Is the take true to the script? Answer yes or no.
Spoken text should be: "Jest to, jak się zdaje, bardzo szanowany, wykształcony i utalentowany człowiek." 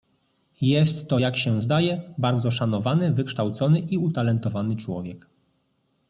yes